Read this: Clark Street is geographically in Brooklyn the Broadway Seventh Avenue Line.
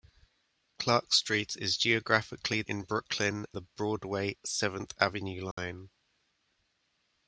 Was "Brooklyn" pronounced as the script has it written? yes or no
yes